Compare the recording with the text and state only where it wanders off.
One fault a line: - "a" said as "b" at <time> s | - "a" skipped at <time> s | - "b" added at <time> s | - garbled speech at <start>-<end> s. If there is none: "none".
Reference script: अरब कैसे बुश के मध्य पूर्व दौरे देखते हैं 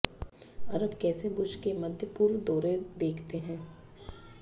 none